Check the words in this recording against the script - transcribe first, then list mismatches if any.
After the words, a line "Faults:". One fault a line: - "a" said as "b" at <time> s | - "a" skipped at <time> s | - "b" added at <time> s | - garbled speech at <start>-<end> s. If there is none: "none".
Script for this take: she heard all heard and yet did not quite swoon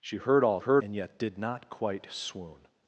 she heard all heard and yet did not quite swoon
Faults:
none